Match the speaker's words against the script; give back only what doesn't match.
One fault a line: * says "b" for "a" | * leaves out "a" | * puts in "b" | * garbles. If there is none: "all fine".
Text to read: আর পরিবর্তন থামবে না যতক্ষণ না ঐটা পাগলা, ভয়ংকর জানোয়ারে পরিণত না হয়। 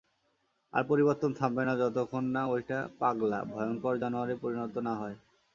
all fine